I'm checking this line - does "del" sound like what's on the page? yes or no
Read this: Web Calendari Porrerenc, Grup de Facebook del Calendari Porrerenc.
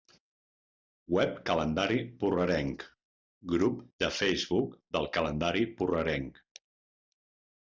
yes